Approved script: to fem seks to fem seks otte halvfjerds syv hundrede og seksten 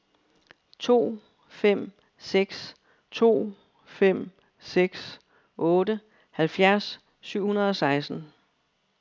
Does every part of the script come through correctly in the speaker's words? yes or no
yes